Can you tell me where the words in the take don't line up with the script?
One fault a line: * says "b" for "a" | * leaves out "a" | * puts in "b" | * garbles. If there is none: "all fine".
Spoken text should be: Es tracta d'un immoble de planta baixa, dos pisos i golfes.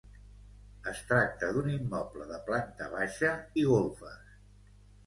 * leaves out "dos pisos"